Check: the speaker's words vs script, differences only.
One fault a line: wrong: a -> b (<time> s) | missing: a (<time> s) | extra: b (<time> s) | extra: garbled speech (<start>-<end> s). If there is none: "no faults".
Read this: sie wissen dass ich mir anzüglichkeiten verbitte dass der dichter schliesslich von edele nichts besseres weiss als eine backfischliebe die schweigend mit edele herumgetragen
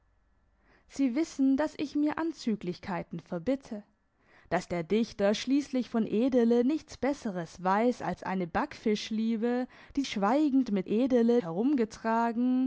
no faults